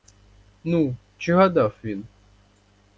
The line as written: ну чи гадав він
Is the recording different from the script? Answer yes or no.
no